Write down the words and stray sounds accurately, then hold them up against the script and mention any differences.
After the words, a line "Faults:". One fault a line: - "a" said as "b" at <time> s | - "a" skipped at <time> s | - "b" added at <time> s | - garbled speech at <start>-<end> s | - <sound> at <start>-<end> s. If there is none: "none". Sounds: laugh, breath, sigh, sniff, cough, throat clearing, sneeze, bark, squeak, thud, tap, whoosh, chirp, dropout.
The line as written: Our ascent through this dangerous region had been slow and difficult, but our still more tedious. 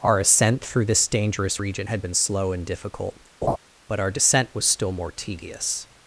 Our ascent through this dangerous region had been slow and difficult, but our descent was still more tedious.
Faults:
- laugh at 3.4-3.6 s
- "descent was" added at 4.1 s